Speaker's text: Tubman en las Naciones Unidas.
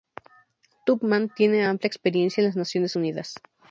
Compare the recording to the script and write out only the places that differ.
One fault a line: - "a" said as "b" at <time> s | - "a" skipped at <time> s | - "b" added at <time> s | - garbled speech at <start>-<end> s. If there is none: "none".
- "tiene amplia experiencia" added at 1.3 s